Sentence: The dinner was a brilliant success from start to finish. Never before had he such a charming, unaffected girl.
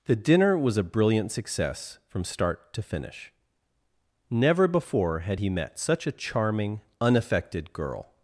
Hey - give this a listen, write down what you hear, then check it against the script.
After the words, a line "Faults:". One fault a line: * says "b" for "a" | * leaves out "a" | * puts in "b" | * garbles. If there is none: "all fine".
The dinner was a brilliant success from start to finish. Never before had he met such a charming, unaffected girl.
Faults:
* puts in "met"